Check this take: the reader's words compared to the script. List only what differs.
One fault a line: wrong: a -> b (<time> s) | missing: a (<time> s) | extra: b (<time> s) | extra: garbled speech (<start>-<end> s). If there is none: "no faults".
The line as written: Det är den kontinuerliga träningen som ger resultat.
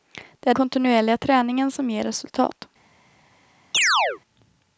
missing: den (0.5 s)